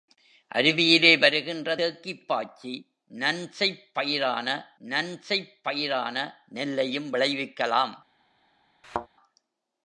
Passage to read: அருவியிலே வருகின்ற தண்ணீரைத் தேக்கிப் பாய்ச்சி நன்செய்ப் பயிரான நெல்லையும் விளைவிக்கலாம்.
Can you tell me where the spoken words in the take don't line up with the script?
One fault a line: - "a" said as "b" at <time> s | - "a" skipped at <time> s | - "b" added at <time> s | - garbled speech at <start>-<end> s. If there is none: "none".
- "தண்ணீரைத்" skipped at 1.8 s
- "நன்செய்ப் பயிரான" added at 4.8 s